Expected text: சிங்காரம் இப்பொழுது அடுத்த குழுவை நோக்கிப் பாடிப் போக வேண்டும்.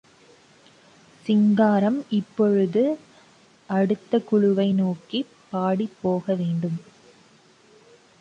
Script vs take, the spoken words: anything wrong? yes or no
no